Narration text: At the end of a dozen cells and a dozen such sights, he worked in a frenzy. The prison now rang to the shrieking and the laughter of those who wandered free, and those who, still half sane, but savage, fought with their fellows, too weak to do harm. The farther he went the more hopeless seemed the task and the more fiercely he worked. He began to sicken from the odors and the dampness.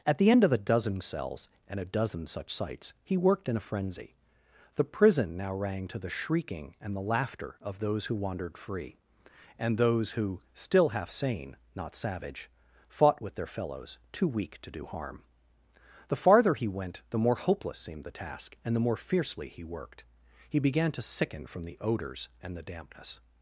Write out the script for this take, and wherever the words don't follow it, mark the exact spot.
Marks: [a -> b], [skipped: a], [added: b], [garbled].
At the end of a dozen cells and a dozen such sights, he worked in a frenzy. The prison now rang to the shrieking and the laughter of those who wandered free, and those who, still half sane, [but -> not] savage, fought with their fellows, too weak to do harm. The farther he went the more hopeless seemed the task and the more fiercely he worked. He began to sicken from the odors and the dampness.